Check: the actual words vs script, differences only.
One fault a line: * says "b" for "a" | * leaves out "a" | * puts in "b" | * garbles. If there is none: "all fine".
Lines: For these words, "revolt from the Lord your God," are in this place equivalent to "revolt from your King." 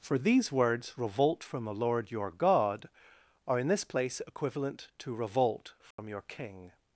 all fine